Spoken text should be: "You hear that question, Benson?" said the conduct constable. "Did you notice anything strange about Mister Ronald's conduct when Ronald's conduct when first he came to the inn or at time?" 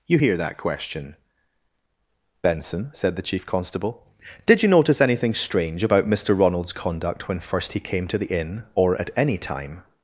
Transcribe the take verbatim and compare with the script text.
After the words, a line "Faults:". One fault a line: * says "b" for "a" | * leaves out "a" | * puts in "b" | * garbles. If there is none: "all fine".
"You hear that question, Benson?" said the chief constable. "Did you notice anything strange about Mister Ronald's conduct when first he came to the inn or at any time?"
Faults:
* says "chief" for "conduct"
* leaves out "Ronald's conduct when"
* puts in "any"